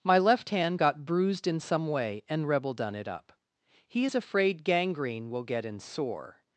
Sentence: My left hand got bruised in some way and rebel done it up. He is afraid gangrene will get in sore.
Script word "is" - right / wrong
right